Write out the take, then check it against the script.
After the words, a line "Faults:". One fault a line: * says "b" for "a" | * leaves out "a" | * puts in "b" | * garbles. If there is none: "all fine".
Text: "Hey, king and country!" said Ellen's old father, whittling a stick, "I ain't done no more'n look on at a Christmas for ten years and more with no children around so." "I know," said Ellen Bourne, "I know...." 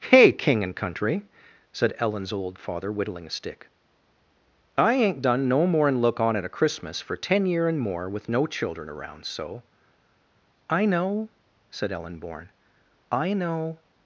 "Hey, king and country!" said Ellen's old father, whittling a stick, "I ain't done no more'n look on at a Christmas for ten year and more with no children around so." "I know," said Ellen Bourne, "I know...."
Faults:
* says "year" for "years"